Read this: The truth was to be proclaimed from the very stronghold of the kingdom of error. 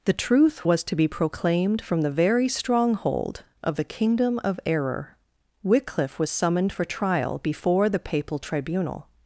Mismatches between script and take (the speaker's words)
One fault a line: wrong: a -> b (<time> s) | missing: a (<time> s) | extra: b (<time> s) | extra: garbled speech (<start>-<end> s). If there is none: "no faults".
extra: Wycliffe was summoned for trial before the papal tribunal (5.6 s)